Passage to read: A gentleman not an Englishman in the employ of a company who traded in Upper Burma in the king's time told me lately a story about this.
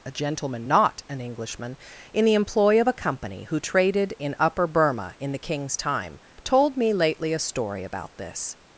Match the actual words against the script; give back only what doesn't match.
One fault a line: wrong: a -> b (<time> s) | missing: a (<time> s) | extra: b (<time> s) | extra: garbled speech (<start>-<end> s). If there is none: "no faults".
no faults